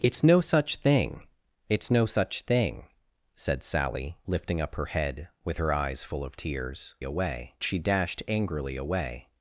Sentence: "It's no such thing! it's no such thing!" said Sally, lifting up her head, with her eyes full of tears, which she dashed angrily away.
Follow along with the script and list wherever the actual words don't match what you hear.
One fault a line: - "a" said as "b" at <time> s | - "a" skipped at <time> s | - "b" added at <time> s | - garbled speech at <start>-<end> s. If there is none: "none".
- "which" said as "away" at 7.0 s